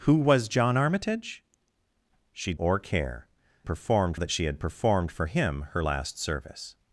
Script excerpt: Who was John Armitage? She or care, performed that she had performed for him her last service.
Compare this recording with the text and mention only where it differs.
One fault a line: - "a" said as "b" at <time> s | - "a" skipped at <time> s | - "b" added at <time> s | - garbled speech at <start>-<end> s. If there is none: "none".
none